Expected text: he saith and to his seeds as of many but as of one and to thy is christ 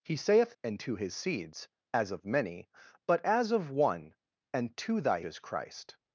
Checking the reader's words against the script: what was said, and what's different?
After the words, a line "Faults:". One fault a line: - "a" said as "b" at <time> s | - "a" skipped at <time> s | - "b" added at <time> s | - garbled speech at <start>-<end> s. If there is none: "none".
he saith and to his seeds as of many but as of one and to thy is christ
Faults:
none